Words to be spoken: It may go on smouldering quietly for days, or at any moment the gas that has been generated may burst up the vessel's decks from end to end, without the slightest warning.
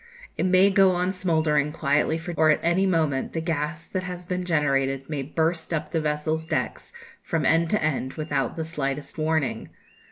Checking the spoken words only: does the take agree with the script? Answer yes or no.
no